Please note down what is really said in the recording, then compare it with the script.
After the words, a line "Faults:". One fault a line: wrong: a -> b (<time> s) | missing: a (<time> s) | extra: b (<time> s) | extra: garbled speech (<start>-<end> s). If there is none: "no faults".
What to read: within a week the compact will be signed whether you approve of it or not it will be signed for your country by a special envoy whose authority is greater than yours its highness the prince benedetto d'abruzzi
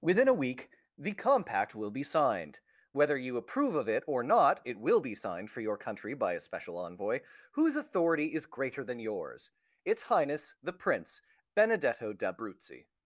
within a week the compact will be signed whether you approve of it or not it will be signed for your country by a special envoy whose authority is greater than yours its highness the prince benedetto d'abruzzi
Faults:
no faults